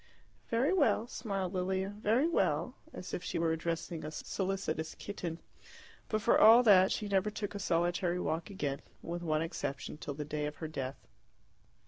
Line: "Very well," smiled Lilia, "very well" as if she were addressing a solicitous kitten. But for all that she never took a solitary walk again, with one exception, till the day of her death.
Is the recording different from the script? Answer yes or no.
no